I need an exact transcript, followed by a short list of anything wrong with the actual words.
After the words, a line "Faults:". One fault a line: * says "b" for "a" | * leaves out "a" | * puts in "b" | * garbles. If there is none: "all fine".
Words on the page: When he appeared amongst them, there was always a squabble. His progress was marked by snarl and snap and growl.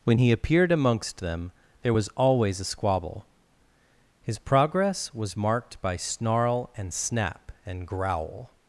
When he appeared amongst them, there was always a squabble. His progress was marked by snarl and snap and growl.
Faults:
all fine